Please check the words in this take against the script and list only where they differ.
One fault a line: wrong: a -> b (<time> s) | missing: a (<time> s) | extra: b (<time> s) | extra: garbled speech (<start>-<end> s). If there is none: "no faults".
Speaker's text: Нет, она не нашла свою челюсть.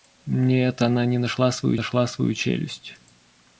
extra: нашла свою (1.7 s)